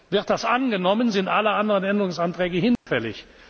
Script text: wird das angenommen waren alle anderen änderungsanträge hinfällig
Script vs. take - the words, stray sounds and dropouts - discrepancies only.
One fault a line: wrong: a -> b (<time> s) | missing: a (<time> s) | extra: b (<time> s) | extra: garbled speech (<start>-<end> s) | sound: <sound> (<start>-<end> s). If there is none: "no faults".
wrong: waren -> sind (1.1 s)
sound: dropout (2.8-2.9 s)